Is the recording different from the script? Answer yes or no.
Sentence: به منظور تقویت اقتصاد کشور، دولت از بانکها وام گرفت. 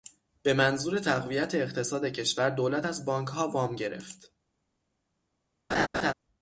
no